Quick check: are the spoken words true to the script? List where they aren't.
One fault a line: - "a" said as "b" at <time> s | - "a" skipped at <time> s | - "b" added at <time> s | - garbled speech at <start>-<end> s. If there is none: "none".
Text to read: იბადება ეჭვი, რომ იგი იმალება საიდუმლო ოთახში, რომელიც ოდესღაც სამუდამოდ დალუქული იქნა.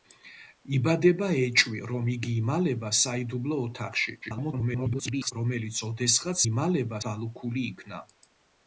- garbled speech at 4.2-5.3 s
- "სამუდამოდ" said as "იმალება" at 6.5 s